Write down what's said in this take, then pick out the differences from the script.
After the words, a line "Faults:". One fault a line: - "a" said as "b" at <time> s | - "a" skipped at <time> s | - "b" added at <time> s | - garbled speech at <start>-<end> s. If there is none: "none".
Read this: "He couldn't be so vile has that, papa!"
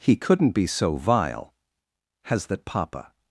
"He couldn't be so vile has that, papa!"
Faults:
none